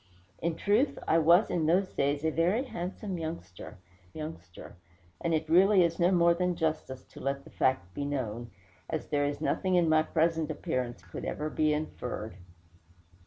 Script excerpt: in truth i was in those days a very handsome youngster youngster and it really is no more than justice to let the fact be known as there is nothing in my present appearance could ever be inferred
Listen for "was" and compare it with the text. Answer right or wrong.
right